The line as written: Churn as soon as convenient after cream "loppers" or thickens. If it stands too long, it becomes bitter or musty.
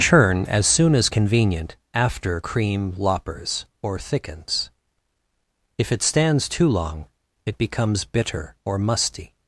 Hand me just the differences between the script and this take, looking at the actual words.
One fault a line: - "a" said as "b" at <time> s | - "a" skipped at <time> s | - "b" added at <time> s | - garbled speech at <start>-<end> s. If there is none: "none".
none